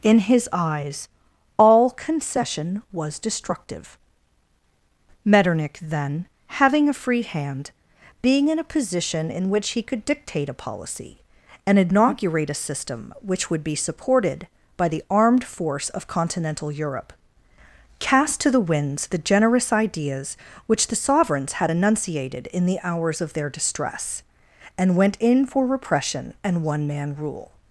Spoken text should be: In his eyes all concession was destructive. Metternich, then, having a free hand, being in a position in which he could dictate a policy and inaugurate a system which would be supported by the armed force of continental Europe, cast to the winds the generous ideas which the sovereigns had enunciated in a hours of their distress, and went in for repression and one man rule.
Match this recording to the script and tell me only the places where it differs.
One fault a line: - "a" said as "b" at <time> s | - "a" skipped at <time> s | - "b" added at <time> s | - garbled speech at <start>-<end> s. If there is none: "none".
- "a" said as "the" at 22.7 s